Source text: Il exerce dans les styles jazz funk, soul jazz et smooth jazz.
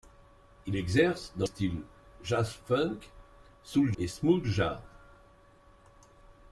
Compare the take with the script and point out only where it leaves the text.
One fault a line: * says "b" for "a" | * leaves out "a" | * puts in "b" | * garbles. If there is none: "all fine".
* leaves out "les"
* leaves out "jazz"